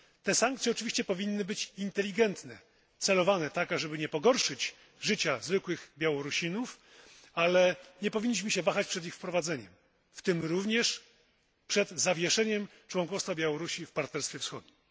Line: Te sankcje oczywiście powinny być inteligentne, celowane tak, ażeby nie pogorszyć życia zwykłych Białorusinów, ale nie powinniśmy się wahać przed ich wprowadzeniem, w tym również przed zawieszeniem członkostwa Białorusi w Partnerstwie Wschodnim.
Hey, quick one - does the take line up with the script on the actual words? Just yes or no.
yes